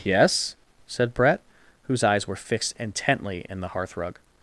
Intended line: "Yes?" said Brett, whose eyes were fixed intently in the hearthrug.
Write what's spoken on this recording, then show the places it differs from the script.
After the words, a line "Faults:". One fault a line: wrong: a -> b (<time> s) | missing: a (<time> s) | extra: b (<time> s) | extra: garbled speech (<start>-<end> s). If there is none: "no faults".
"Yes?" said Brett, whose eyes were fixed intently in the hearthrug.
Faults:
no faults